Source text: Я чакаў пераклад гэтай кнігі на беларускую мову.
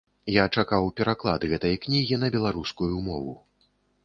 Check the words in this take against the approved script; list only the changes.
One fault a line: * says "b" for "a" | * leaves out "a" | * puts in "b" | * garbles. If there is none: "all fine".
all fine